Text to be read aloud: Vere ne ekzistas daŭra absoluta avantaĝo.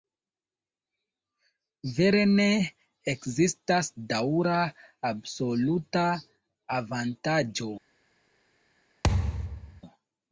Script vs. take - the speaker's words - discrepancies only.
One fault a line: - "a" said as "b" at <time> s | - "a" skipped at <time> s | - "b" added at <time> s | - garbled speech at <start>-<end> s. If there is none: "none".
none